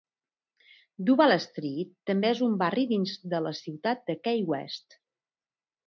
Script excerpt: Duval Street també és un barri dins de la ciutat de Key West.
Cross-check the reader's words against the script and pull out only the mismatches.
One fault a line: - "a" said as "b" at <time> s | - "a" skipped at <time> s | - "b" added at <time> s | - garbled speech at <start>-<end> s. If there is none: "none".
none